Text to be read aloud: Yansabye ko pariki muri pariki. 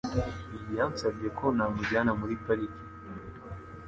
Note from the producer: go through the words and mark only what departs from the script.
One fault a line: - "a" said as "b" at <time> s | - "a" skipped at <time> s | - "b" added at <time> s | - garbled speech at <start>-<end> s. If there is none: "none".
- "pariki" said as "namujyana" at 1.6 s